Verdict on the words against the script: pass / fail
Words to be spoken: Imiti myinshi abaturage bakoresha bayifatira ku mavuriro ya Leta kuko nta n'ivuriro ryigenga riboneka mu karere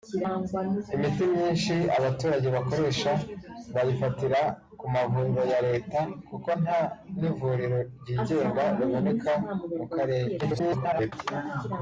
fail